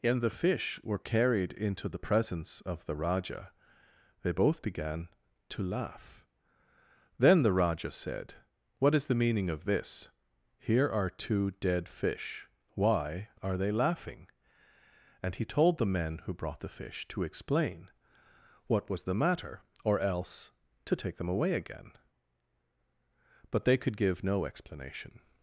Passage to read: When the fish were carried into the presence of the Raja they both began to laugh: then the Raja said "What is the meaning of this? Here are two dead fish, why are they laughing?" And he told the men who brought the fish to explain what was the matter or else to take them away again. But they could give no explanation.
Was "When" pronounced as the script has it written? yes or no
no